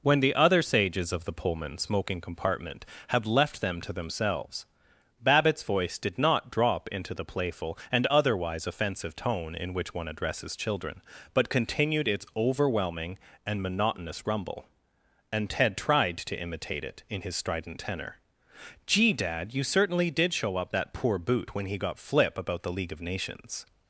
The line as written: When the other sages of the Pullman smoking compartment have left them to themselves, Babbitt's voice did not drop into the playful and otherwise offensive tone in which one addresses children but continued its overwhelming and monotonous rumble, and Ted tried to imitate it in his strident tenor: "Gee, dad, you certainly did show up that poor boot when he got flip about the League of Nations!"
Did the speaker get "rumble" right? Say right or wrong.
right